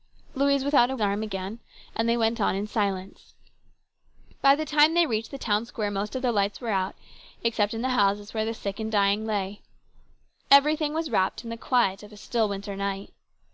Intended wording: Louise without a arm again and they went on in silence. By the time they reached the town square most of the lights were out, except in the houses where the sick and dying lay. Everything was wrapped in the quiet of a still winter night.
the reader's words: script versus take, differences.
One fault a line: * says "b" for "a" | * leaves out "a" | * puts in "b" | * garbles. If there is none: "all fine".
all fine